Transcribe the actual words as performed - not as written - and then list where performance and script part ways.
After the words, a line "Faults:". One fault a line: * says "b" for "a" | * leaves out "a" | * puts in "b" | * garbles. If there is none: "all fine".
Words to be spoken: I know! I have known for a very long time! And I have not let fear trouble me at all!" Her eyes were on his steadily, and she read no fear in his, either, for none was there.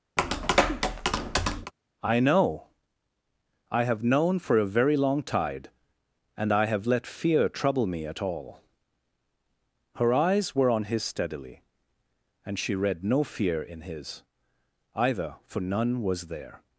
I know! I have known for a very long tide! And I have let fear trouble me at all!" Her eyes were on his steadily, and she read no fear in his, either, for none was there.
Faults:
* says "tide" for "time"
* leaves out "not"